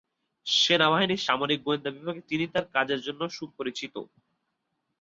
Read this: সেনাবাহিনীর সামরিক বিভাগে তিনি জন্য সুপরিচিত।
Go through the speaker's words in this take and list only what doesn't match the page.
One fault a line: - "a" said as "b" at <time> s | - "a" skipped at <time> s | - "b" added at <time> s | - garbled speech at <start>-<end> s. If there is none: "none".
- "গোয়েন্দা" added at 1.7 s
- "তার কাজের" added at 2.5 s